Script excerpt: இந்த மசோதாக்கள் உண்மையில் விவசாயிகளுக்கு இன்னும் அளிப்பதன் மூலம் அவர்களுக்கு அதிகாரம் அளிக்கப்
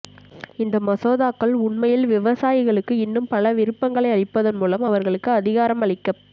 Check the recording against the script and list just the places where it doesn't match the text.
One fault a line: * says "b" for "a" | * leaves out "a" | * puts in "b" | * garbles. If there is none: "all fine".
* puts in "பல விருப்பங்களை"